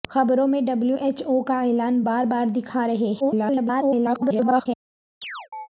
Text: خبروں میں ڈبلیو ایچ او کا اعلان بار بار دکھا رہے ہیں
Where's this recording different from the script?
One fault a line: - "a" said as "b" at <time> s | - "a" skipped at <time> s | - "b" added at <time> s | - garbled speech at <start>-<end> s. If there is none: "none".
- garbled speech at 3.2-4.7 s